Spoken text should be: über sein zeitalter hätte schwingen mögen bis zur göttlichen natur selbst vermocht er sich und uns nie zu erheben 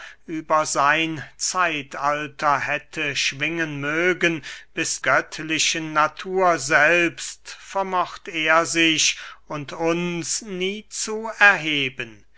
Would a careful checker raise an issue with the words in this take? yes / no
yes